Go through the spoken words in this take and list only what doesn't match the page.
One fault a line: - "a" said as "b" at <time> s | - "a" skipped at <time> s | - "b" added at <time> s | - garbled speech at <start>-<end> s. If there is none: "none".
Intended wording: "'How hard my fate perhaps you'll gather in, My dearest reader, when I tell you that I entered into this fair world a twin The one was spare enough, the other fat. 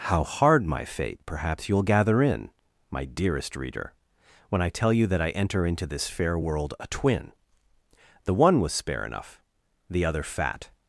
- "entered" said as "enter" at 5.3 s